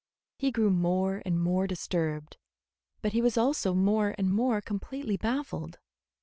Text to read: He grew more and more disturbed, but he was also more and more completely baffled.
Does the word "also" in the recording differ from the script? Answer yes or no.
no